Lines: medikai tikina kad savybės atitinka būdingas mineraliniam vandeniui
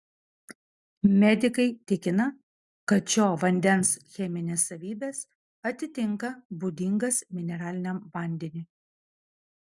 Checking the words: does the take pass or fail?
fail